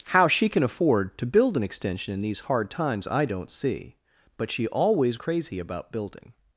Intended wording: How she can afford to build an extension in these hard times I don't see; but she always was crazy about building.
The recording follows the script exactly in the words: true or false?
false